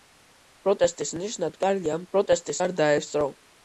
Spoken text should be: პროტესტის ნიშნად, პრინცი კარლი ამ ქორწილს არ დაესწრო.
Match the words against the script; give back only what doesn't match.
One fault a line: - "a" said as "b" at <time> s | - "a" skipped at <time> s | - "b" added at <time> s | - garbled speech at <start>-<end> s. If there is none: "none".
- "პრინცი" skipped at 1.6 s
- "ქორწილს" said as "პროტესტის" at 2.2 s